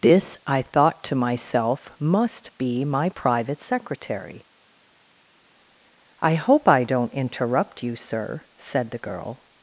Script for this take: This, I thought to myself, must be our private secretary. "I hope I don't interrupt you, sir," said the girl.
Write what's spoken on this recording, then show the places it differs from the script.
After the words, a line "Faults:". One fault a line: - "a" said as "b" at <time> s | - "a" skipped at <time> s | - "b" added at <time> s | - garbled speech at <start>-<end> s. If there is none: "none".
This, I thought to myself, must be my private secretary. "I hope I don't interrupt you, sir," said the girl.
Faults:
- "our" said as "my" at 2.8 s